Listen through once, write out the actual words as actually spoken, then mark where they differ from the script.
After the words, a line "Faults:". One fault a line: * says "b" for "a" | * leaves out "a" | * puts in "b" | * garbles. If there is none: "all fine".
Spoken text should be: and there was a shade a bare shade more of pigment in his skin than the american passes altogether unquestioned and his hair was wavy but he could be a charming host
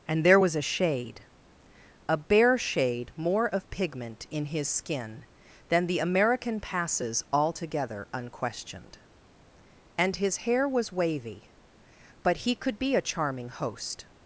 and there was a shade a bare shade more of pigment in his skin than the american passes altogether unquestioned and his hair was wavy but he could be a charming host
Faults:
all fine